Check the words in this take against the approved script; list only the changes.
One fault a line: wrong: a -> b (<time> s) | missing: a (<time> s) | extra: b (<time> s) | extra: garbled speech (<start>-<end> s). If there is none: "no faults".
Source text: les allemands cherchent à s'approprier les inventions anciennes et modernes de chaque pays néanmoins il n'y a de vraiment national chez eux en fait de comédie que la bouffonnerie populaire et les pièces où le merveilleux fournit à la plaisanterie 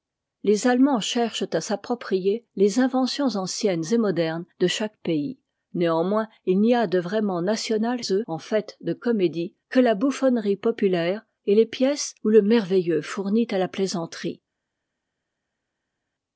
missing: chez (8.0 s)